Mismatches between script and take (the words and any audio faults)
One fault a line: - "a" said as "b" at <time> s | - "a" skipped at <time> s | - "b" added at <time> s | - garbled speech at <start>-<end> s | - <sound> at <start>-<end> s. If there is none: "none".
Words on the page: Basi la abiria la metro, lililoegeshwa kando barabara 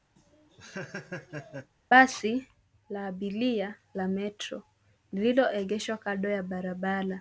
- laugh at 0.2-1.7 s
- "ya" added at 6.3 s